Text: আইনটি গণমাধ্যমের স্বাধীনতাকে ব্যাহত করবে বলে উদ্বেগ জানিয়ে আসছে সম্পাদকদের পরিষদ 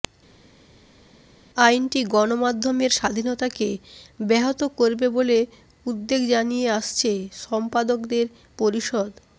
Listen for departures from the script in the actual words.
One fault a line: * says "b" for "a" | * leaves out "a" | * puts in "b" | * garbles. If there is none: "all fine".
all fine